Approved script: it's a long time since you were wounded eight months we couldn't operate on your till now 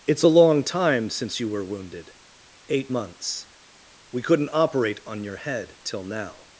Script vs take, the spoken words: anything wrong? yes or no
yes